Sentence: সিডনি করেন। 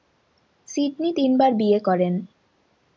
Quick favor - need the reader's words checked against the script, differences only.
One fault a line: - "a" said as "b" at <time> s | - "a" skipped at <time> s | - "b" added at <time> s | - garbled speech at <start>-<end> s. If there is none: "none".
- "তিনবার বিয়ে" added at 1.1 s